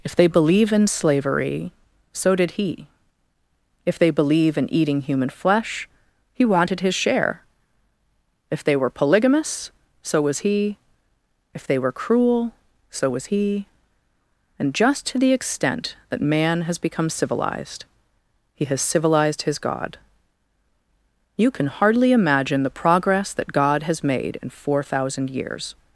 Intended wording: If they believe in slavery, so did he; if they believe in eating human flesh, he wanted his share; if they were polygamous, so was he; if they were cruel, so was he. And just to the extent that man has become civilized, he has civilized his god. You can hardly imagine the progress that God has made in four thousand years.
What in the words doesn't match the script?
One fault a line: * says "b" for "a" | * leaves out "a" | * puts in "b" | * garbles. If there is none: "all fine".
all fine